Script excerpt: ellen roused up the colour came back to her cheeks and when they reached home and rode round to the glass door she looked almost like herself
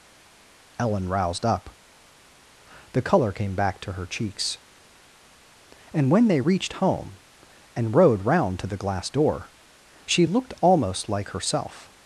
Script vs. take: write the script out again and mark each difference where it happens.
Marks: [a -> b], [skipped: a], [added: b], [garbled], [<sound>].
ellen roused up the colour came back to her cheeks and when they reached home and rode round to the glass door she looked almost like herself